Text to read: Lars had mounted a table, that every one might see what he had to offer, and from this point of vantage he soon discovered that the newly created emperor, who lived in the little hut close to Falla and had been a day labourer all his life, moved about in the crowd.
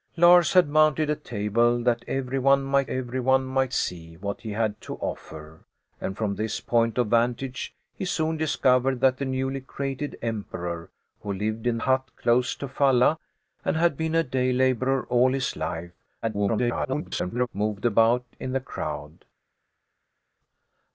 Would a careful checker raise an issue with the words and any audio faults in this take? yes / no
yes